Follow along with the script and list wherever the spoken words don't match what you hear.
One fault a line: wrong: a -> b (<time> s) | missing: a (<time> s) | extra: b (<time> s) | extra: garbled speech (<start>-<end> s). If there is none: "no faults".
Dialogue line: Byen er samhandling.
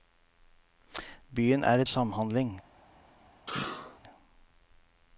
no faults